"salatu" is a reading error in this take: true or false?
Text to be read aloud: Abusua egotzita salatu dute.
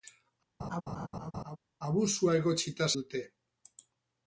true